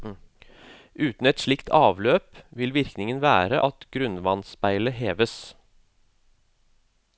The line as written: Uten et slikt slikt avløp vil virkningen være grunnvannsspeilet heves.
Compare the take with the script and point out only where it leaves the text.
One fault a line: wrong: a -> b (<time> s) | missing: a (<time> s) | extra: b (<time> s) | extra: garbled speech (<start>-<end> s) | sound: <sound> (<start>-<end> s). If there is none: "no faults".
missing: slikt (1.7 s)
extra: at (3.7 s)